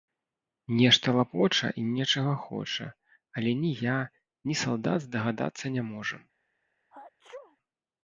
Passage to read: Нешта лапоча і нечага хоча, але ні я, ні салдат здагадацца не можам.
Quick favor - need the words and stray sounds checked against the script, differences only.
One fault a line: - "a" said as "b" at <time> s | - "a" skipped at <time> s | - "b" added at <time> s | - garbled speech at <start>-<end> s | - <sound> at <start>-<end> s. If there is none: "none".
- sneeze at 6.9-7.6 s